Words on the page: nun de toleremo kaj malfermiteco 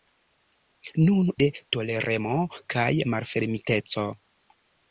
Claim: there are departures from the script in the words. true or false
false